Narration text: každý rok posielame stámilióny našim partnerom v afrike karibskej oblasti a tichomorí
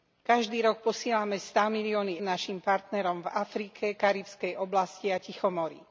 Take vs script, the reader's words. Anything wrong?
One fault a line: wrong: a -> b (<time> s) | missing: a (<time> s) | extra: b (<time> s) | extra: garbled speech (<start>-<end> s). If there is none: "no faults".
no faults